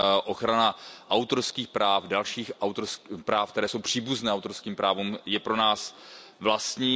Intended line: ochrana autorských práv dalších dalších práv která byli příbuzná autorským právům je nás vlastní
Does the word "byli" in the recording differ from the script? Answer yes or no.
yes